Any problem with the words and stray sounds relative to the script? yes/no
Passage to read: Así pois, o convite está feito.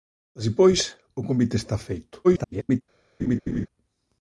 yes